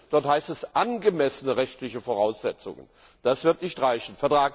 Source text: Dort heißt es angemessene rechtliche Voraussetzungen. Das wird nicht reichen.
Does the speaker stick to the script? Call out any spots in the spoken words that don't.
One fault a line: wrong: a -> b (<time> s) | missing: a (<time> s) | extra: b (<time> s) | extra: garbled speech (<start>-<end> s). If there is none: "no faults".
no faults